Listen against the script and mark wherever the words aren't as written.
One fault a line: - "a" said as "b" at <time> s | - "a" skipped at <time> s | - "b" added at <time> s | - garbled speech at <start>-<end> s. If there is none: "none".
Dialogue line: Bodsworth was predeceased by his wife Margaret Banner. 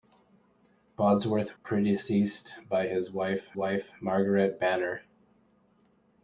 - "was" skipped at 1.6 s
- "wife" added at 3.5 s